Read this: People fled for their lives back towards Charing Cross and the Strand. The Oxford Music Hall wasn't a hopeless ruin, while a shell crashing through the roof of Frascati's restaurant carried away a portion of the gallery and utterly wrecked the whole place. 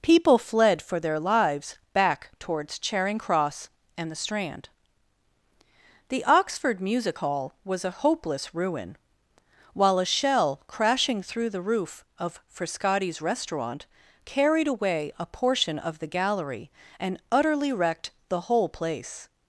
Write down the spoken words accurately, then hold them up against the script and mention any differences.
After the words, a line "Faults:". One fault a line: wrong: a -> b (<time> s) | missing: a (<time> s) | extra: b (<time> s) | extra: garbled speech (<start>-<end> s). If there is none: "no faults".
People fled for their lives back towards Charing Cross and the Strand. The Oxford Music Hall was a hopeless ruin, while a shell crashing through the roof of Frascati's restaurant carried away a portion of the gallery and utterly wrecked the whole place.
Faults:
wrong: wasn't -> was (7.6 s)